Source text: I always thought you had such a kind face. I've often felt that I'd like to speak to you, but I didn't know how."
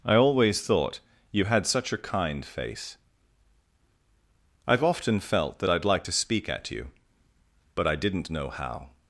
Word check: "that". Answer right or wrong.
right